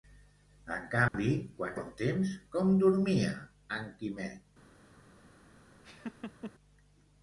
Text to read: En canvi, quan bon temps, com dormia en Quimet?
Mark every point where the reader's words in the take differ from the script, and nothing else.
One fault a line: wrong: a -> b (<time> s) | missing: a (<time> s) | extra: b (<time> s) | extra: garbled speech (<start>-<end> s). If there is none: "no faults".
no faults